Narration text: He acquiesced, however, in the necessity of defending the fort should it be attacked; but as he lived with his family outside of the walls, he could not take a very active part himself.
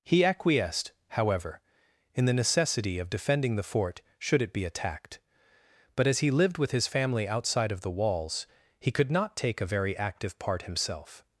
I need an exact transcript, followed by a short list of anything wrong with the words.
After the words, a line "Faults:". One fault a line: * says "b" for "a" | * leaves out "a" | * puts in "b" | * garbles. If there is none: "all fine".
He acquiesced, however, in the necessity of defending the fort should it be attacked; but as he lived with his family outside of the walls, he could not take a very active part himself.
Faults:
all fine